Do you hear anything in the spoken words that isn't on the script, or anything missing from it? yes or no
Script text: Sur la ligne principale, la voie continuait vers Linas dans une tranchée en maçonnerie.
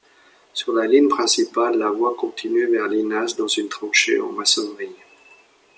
no